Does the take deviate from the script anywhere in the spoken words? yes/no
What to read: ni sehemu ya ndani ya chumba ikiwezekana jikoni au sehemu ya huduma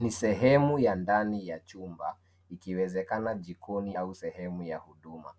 no